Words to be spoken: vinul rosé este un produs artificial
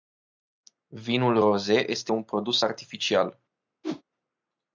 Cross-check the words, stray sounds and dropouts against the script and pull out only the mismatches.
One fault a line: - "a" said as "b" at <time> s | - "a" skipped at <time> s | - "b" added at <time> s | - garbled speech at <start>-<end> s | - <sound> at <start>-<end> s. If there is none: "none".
- whoosh at 3.8-4.0 s